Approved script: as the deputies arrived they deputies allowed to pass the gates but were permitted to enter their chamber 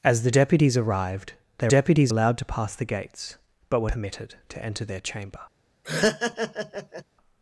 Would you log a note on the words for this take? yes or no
no